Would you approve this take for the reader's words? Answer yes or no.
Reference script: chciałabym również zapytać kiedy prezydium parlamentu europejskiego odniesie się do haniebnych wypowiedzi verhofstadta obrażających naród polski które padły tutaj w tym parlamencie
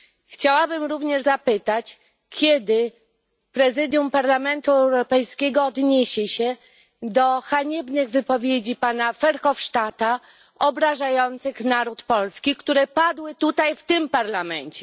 no